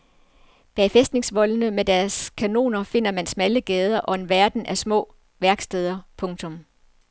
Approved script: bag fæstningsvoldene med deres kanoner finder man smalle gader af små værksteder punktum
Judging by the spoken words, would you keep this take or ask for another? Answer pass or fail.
fail